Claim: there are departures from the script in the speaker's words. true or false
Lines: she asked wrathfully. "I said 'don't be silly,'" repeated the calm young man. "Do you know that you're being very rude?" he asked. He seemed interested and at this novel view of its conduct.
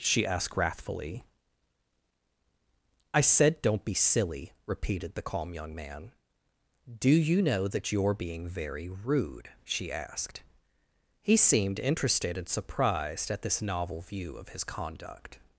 true